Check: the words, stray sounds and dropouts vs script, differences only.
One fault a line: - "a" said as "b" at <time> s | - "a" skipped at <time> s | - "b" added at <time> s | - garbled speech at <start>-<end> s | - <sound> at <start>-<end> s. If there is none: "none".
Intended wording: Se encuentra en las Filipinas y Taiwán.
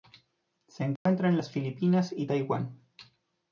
- dropout at 1.0-1.1 s